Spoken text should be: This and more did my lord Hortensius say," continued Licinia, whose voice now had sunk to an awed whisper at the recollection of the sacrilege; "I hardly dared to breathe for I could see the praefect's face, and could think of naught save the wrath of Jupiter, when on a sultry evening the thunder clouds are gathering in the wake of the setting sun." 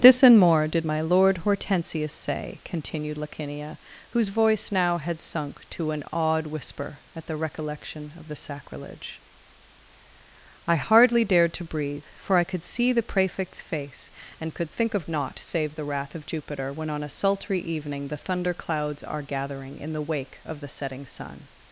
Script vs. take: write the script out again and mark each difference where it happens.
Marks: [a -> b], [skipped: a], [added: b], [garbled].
This and more did my lord Hortensius say," continued Licinia, whose voice now had sunk to an awed whisper at the recollection of the sacrilege; "I hardly dared to breathe for I could see the praefect's face, and could think of naught save the wrath of Jupiter, when on a sultry evening the thunder clouds are gathering in the wake of the setting sun."